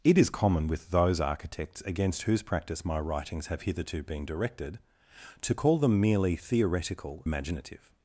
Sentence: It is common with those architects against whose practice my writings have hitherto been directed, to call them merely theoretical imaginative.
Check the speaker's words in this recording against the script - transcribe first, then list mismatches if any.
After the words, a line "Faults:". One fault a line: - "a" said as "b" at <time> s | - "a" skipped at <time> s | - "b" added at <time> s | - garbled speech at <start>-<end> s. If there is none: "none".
It is common with those architects against whose practice my writings have hitherto been directed, to call them merely theoretical imaginative.
Faults:
none